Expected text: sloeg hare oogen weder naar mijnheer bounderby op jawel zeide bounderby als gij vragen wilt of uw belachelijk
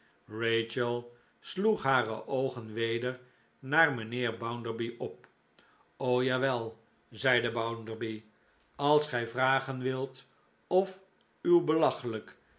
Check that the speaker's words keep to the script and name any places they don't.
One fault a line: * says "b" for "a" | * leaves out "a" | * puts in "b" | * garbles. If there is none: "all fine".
all fine